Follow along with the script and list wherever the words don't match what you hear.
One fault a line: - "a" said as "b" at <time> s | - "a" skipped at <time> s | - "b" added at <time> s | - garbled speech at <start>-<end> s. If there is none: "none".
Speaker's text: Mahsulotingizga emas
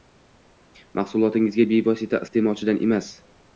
- "bevosita iste'molchidan" added at 1.7 s